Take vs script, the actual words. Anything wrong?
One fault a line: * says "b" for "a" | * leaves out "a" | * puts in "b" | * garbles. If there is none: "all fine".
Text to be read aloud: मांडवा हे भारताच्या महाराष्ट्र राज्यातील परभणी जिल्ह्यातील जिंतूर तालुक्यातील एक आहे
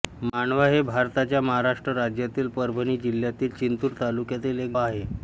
all fine